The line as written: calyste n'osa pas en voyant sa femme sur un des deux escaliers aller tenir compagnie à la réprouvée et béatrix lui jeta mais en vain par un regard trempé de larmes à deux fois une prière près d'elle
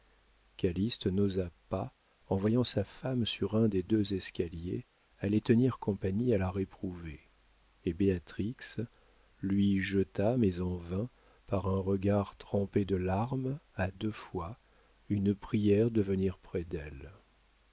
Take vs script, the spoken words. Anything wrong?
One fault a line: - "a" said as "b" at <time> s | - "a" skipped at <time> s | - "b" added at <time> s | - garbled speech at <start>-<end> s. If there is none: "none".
- "de venir" added at 15.9 s